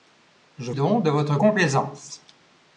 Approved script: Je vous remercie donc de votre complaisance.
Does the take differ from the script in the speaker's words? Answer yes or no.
yes